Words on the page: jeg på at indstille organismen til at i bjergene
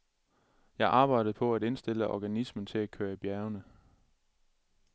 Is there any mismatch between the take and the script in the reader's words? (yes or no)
yes